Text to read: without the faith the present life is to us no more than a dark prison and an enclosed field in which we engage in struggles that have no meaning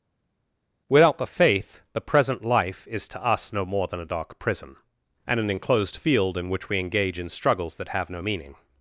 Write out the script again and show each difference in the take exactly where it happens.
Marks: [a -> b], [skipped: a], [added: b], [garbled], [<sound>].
without the faith the present life is to us no more than a dark prison and an enclosed field in which we engage in struggles that have no meaning